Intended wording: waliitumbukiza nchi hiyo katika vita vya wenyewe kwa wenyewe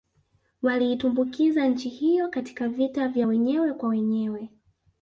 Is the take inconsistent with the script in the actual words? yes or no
no